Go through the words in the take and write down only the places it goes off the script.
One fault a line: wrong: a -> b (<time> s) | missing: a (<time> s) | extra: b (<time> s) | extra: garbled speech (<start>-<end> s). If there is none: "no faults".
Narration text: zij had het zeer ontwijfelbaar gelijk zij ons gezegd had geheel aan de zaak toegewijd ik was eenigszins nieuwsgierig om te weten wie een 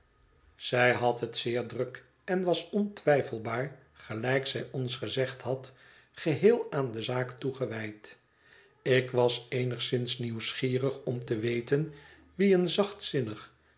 extra: druk en was (1.6 s)